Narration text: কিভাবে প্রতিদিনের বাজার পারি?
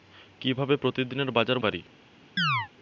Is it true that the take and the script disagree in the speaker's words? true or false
false